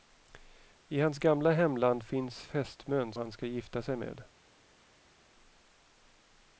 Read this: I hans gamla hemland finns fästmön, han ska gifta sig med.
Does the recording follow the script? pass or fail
pass